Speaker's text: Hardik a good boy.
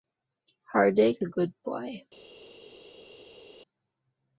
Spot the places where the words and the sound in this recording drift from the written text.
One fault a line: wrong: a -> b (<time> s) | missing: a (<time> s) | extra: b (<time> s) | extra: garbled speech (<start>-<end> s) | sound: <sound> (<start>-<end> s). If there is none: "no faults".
no faults